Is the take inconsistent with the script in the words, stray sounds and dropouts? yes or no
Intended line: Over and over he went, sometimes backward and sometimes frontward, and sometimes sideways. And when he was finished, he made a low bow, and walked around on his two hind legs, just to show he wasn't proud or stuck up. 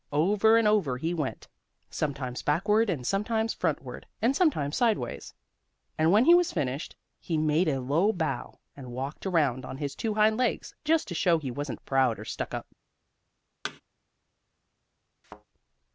yes